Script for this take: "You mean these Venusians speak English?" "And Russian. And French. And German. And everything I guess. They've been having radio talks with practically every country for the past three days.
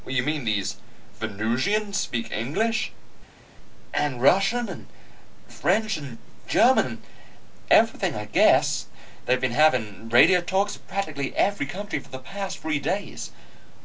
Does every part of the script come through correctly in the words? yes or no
yes